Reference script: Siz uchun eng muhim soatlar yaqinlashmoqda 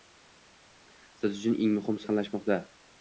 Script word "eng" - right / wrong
right